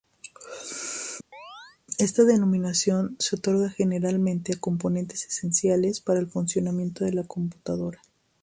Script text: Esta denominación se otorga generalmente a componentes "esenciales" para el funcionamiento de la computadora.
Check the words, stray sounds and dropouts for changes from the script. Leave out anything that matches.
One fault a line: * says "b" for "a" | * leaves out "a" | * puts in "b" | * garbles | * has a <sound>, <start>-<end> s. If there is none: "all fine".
* has a chirp, 1.3-1.8 s